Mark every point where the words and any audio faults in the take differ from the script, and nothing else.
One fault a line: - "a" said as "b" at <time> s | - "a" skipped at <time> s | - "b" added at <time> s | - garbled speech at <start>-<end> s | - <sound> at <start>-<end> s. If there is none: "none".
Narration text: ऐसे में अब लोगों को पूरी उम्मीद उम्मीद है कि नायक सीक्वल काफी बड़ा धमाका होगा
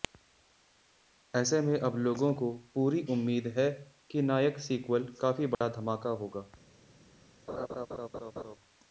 - "उम्मीद" skipped at 3.5 s
- dropout at 5.5-5.6 s
- laugh at 7.5-8.6 s